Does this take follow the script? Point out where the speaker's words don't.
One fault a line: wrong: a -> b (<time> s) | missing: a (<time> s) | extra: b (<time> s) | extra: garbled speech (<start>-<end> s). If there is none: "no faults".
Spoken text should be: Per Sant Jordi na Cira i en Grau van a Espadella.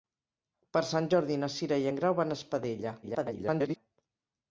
extra: garbled speech (3.0-3.8 s)